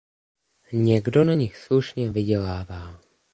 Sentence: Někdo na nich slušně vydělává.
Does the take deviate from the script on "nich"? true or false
false